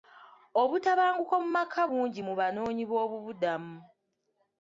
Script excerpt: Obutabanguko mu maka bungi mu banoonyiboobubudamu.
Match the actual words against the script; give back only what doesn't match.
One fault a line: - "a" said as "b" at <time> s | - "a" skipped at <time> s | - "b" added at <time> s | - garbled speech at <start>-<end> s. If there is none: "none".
none